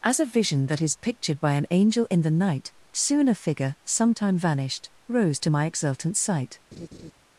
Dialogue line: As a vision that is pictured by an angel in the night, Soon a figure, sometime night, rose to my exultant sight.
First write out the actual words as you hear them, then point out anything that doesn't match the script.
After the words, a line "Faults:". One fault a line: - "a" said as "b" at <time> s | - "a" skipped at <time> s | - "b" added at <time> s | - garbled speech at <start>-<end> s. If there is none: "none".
As a vision that is pictured by an angel in the night, Soon a figure, sometime vanished, rose to my exultant sight.
Faults:
- "night" said as "vanished" at 4.4 s